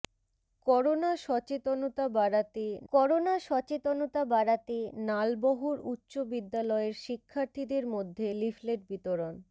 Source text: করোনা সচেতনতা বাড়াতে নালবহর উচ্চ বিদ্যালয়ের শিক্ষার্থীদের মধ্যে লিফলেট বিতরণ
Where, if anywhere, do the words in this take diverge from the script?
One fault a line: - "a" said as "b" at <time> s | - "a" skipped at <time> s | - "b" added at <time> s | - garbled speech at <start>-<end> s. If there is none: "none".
- "করোনা সচেতনতা বাড়াতে" added at 2.9 s